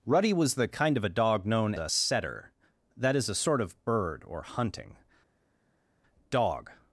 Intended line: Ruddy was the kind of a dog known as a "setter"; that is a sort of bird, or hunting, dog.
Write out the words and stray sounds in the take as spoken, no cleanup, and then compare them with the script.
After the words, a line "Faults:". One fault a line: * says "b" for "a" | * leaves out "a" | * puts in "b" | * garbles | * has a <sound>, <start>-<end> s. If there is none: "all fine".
Ruddy was the kind of a dog known a "setter"; that is a sort of bird, or hunting, dog.
Faults:
* leaves out "as"